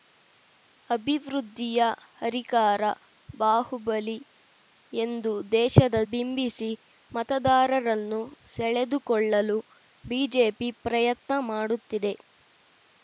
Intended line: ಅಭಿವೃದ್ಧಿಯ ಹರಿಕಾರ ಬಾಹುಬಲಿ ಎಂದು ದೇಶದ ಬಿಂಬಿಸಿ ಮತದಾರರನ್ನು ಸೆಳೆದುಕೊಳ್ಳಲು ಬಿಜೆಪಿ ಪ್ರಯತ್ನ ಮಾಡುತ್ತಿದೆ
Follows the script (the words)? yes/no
yes